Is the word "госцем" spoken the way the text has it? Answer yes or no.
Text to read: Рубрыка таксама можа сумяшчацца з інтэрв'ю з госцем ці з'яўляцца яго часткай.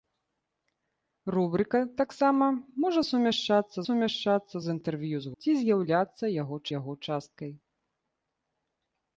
no